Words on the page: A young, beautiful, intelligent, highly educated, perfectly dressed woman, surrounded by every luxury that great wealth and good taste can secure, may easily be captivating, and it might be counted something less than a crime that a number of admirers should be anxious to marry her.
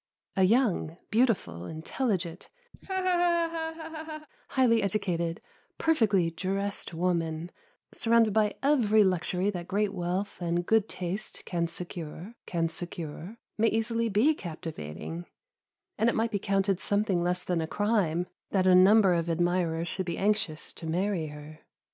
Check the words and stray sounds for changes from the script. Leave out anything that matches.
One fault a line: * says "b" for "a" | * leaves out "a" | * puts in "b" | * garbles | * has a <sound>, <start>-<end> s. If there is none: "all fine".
* has a laugh, 2.7-4.3 s
* puts in "can secure"